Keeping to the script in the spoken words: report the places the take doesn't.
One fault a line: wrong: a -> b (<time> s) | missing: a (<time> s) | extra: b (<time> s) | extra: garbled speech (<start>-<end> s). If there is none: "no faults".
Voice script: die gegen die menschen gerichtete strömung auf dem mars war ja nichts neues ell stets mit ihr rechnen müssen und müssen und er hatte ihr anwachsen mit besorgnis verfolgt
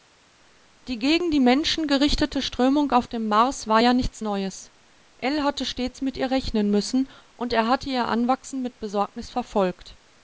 extra: hatte (5.4 s)
missing: müssen und (7.5 s)